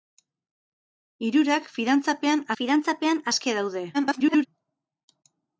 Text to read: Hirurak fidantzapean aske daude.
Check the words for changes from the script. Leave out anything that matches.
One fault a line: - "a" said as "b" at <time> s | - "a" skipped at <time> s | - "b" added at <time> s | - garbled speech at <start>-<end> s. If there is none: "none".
- "fidantzapean" added at 2.6 s
- garbled speech at 3.9-4.5 s